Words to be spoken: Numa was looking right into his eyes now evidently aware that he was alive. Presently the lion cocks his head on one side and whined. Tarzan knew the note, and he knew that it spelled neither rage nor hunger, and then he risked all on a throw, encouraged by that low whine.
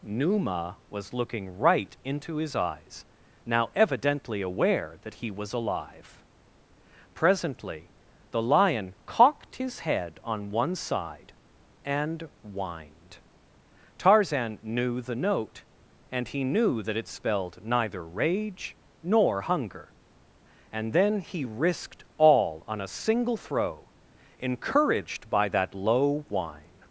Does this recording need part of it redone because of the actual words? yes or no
yes